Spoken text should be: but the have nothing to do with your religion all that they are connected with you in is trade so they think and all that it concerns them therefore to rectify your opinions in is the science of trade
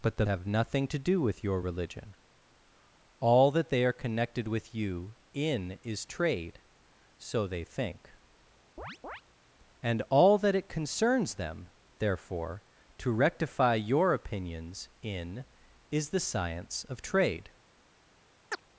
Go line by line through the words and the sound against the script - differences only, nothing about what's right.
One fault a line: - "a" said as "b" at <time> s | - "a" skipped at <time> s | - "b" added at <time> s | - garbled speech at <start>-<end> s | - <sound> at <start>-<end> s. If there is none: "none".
- chirp at 8.8-9.2 s
- chirp at 18.5-18.6 s